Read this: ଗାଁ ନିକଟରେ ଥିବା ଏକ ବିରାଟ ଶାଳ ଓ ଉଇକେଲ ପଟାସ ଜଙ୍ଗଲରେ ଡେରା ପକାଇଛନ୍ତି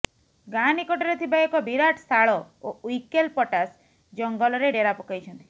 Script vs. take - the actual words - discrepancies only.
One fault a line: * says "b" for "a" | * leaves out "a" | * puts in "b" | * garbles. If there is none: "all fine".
all fine